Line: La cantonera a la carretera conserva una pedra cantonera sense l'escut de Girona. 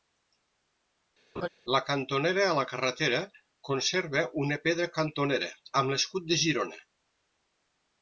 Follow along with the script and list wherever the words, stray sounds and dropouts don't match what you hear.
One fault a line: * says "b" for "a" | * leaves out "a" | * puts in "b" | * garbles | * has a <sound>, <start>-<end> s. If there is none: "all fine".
* has a laugh, 1.4-1.5 s
* says "amb" for "sense"